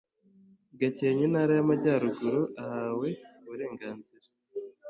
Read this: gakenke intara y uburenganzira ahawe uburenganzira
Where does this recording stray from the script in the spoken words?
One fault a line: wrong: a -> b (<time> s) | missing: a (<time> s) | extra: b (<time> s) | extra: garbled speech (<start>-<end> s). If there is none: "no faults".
wrong: uburenganzira -> amajyaruguru (1.6 s)